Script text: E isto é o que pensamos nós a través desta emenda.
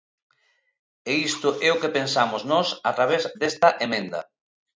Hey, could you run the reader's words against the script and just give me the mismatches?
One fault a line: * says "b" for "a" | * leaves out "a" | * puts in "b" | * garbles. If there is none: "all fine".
all fine